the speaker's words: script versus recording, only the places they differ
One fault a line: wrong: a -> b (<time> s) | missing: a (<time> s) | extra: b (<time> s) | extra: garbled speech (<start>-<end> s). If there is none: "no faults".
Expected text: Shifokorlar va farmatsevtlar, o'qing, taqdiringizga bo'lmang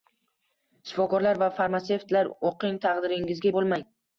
no faults